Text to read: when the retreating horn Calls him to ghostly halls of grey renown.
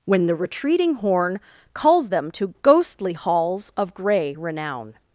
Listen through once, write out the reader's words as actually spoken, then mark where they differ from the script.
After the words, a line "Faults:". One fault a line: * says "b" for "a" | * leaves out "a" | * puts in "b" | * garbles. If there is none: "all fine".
when the retreating horn Calls them to ghostly halls of grey renown.
Faults:
* says "them" for "him"